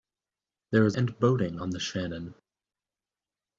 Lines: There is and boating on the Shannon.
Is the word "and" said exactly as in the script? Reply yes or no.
yes